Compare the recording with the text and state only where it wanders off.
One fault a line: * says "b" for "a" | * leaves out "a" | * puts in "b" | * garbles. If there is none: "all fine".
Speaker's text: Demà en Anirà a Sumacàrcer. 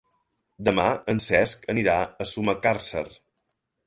* puts in "Cesc"